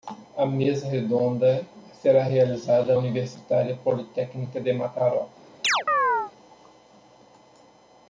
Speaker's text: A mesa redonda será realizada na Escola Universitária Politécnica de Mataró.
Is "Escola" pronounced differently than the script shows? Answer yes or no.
yes